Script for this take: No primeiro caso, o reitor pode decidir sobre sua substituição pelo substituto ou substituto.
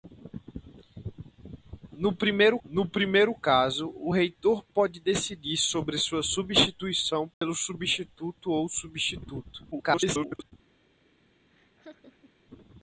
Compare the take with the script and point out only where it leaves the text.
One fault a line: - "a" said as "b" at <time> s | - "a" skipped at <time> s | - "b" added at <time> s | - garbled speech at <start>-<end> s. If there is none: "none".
- "no primeiro" added at 2.6 s
- garbled speech at 9.7-10.5 s